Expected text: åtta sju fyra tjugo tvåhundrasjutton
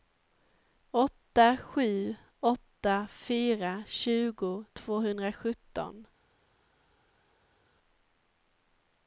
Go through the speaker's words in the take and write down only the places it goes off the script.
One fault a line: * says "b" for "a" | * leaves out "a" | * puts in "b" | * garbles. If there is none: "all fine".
* puts in "åtta"